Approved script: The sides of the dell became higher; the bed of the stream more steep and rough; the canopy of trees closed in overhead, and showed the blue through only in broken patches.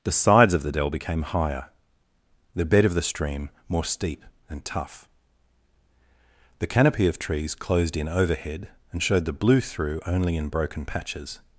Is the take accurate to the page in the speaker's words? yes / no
no